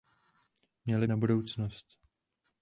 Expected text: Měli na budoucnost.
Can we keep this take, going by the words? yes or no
yes